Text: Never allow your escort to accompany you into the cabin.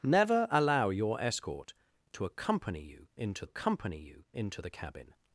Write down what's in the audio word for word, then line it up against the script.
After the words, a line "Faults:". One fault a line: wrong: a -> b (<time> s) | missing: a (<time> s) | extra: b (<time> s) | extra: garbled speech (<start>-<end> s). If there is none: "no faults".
Never allow your escort to accompany you into accompany you into the cabin.
Faults:
extra: accompany you into (3.4 s)